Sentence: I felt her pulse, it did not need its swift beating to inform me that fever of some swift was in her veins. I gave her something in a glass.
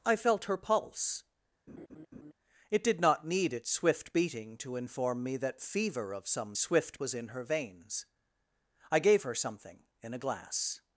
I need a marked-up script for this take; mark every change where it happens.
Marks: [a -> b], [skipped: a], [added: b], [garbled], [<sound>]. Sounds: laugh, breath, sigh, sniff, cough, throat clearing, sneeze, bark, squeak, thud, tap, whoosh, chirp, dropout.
I felt her pulse, [laugh] it did not need its swift beating to inform me that fever of some swift was in her veins. I gave her something in a glass.